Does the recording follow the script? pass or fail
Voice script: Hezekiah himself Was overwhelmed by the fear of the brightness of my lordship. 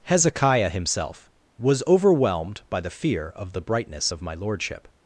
pass